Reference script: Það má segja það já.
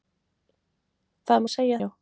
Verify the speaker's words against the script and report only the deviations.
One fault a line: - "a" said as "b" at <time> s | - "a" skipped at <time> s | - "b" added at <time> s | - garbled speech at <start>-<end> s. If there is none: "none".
- "það" skipped at 1.8 s